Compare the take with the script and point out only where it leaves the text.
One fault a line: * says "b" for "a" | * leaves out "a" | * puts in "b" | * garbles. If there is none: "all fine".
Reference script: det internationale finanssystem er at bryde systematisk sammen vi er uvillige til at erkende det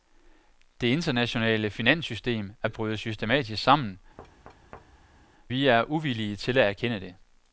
all fine